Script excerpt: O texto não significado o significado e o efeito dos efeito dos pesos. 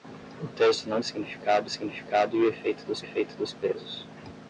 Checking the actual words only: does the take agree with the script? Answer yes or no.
yes